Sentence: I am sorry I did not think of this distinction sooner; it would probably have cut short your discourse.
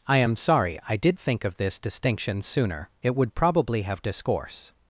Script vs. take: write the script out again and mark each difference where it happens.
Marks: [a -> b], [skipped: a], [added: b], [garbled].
I am sorry I did [skipped: not] think of this distinction sooner; it would probably have [skipped: cut short your] discourse.